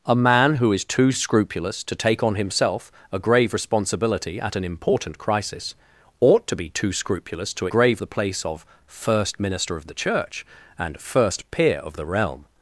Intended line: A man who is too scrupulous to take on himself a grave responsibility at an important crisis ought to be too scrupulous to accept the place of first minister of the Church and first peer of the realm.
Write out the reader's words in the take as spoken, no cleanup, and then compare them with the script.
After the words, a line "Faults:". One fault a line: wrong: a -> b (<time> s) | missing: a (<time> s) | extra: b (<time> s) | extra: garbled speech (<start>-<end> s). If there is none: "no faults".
A man who is too scrupulous to take on himself a grave responsibility at an important crisis ought to be too scrupulous to grave the place of first minister of the Church and first peer of the realm.
Faults:
wrong: accept -> grave (7.7 s)